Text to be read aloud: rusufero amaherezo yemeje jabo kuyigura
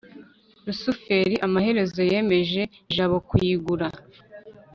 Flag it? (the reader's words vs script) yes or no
no